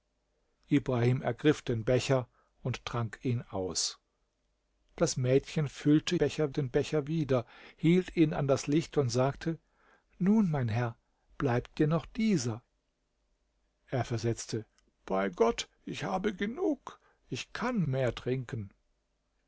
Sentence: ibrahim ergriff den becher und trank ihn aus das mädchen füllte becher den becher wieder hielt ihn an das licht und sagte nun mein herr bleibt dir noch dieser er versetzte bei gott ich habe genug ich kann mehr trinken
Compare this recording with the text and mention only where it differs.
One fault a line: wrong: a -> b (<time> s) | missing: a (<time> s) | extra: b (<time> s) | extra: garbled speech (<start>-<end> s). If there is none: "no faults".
no faults